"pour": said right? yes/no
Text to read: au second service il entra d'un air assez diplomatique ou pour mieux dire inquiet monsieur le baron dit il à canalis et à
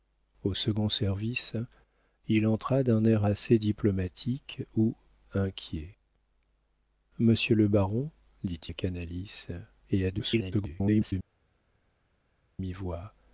no